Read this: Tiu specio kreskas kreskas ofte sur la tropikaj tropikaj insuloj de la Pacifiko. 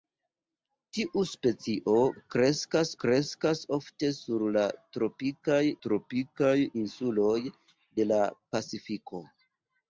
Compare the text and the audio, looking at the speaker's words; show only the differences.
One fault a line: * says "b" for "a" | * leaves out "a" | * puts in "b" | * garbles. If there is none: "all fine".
all fine